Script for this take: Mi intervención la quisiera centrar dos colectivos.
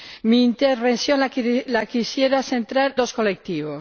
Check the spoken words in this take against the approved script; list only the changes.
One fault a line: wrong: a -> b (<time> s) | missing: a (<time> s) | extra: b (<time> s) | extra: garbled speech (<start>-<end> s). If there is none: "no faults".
no faults